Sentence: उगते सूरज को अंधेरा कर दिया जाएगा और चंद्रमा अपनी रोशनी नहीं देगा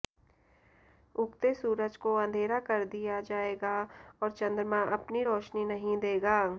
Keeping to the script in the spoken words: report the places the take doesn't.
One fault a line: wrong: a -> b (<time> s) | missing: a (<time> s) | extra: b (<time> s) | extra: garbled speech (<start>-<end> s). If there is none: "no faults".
no faults